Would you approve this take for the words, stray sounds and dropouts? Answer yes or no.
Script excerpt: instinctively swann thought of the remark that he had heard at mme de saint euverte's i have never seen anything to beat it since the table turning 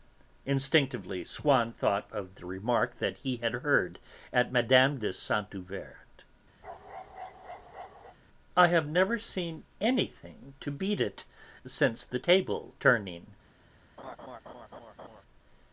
no